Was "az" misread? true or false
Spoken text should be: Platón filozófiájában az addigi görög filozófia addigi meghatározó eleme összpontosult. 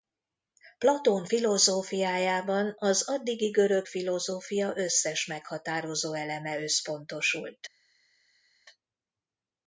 false